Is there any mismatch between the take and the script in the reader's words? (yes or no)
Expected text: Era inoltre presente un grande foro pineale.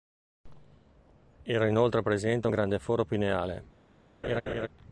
no